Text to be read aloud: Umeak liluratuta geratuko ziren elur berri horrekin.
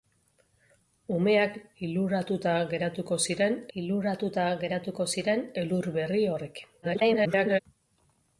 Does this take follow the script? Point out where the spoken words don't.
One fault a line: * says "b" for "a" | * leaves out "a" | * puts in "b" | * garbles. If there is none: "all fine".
* puts in "liluratuta geratuko ziren"
* garbles